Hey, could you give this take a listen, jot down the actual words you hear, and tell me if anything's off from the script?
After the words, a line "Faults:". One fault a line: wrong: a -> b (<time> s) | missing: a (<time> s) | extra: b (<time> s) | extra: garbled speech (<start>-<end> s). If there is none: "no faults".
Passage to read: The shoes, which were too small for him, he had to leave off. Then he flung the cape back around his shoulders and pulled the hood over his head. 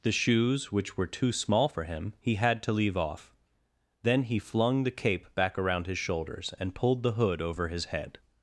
The shoes, which were too small for him, he had to leave off. Then he flung the cape back around his shoulders and pulled the hood over his head.
Faults:
no faults